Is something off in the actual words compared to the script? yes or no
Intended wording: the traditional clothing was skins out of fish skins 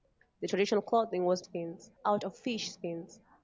no